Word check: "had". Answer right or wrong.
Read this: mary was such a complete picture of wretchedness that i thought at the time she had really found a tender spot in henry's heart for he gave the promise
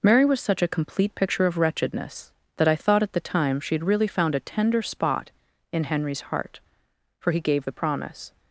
right